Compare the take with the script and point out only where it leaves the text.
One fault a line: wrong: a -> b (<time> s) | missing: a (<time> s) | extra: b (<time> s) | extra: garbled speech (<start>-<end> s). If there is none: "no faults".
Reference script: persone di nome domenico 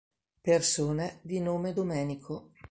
no faults